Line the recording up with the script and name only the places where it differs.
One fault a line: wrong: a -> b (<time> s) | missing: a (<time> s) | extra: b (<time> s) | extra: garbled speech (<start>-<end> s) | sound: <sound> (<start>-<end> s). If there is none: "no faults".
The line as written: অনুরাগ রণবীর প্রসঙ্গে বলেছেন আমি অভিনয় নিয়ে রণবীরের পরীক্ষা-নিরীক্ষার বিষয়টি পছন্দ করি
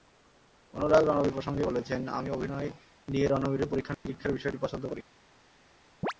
sound: dropout (3.9-4.1 s)
sound: chirp (6.0-6.1 s)